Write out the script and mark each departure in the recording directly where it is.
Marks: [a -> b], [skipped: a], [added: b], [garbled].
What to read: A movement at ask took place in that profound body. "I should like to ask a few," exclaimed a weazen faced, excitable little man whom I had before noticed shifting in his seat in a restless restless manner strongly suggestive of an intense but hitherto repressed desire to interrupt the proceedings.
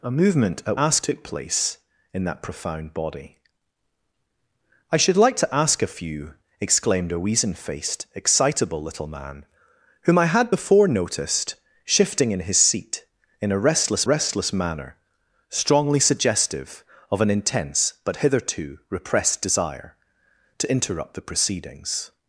A movement at ask took place in that profound body. "I should like to ask a few," exclaimed a weazen faced, excitable little man whom I had before noticed shifting in his seat in a restless restless manner strongly suggestive of an intense but hitherto repressed desire to interrupt the proceedings.